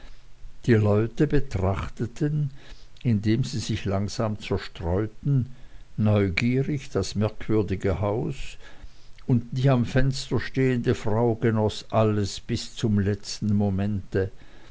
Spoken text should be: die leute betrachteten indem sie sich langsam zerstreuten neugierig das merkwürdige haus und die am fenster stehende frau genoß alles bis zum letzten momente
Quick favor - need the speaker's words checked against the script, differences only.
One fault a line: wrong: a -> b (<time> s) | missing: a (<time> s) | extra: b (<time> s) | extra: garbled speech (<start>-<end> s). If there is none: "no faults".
no faults